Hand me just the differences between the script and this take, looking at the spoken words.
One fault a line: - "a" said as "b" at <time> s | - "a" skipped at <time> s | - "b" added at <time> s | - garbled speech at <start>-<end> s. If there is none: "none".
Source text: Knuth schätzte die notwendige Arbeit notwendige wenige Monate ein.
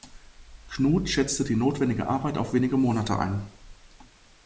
- "notwendige" said as "auf" at 2.4 s